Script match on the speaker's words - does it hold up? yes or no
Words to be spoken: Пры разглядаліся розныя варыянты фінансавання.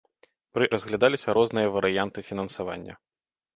yes